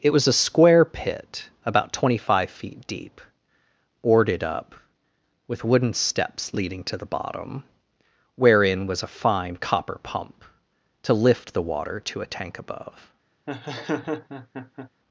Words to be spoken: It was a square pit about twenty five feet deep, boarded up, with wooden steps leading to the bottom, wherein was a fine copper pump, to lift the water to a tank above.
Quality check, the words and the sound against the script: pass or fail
fail